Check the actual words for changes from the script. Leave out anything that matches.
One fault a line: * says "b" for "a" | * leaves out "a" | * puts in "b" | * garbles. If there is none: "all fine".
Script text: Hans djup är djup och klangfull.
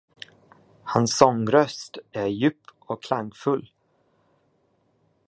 * says "sångröst" for "djup"